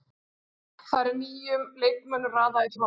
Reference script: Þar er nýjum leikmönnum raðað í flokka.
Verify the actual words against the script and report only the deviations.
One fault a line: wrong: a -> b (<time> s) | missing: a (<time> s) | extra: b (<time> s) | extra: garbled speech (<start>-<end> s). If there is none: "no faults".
no faults